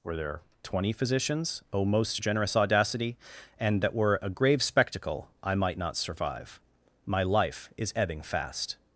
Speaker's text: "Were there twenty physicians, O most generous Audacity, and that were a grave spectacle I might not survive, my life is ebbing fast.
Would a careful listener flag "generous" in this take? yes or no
no